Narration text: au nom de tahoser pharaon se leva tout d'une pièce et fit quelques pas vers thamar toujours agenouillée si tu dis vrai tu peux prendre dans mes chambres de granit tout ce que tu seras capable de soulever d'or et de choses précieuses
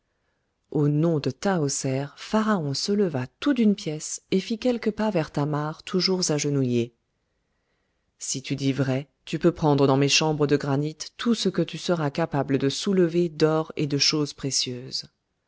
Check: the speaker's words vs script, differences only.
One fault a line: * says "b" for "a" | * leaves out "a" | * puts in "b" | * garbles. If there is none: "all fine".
all fine